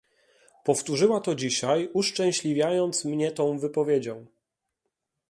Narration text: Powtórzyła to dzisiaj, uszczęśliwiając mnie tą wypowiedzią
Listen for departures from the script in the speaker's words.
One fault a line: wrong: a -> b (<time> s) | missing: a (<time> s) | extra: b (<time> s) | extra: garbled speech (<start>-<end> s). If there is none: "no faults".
no faults